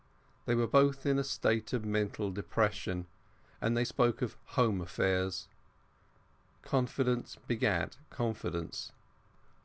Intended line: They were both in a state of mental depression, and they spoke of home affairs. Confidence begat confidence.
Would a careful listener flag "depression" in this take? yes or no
no